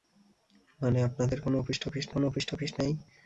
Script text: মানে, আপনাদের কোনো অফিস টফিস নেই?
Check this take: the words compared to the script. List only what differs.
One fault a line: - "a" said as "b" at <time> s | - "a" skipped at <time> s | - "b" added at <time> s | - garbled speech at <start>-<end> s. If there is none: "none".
- "কোনো অফিস টফিস" added at 2.1 s